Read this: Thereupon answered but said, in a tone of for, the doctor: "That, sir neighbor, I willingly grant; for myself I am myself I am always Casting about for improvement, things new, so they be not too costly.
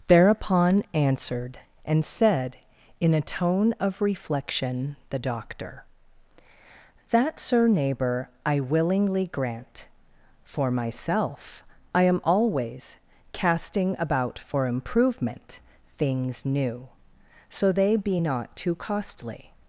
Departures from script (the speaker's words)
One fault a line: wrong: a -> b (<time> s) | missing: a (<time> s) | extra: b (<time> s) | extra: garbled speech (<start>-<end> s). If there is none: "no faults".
wrong: but -> and (1.9 s)
wrong: for -> reflection (4.0 s)
missing: myself I am (12.2 s)